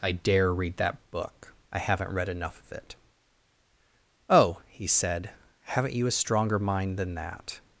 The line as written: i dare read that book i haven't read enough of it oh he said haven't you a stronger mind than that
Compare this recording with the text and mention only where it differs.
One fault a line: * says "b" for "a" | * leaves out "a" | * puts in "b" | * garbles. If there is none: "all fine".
all fine